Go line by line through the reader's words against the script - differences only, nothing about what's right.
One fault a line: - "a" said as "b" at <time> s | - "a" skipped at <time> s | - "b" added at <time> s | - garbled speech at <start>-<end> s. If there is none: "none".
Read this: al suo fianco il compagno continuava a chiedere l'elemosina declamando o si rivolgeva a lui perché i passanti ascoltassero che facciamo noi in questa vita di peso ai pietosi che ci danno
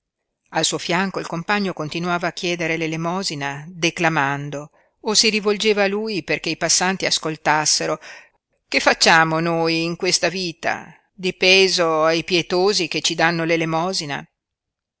none